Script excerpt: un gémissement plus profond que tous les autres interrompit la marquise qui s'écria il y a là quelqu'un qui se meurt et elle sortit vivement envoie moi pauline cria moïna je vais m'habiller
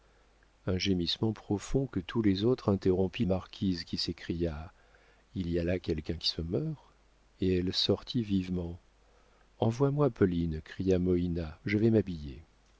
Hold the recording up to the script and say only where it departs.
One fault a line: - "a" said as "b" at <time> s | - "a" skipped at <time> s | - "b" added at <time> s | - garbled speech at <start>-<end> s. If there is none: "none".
- "plus" skipped at 1.3 s
- "la" skipped at 3.2 s